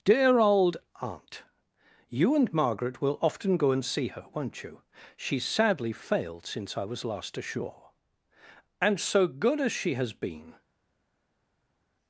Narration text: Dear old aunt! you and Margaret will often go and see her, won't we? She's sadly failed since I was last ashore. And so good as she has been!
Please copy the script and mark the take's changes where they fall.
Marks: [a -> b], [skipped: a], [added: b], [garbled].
Dear old aunt! you and Margaret will often go and see her, won't [we? -> you] She's sadly failed since I was last ashore. And so good as she has been!